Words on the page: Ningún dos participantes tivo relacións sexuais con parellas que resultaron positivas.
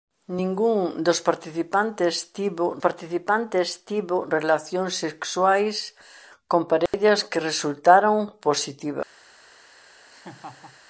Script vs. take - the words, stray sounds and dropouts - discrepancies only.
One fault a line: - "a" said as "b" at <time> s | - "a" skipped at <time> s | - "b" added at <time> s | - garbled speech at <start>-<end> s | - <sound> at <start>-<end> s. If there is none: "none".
- "participantes tivo" added at 2.8 s
- dropout at 6.9-6.9 s
- laugh at 10.1-10.8 s